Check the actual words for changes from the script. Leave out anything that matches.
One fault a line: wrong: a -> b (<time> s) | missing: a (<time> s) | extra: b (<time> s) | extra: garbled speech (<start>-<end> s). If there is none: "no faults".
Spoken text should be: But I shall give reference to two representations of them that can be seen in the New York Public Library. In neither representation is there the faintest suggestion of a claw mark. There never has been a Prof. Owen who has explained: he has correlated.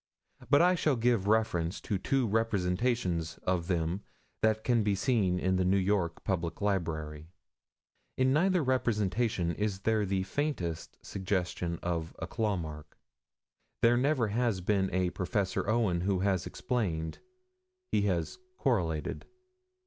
no faults